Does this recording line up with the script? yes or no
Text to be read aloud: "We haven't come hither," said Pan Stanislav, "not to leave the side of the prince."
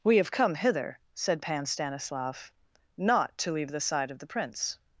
no